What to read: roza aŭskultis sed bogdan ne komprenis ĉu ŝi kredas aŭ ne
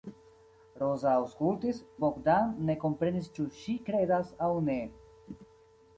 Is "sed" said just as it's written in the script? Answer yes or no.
no